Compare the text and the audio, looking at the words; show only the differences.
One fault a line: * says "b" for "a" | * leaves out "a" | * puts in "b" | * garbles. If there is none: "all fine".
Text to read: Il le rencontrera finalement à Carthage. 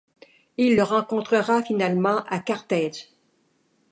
all fine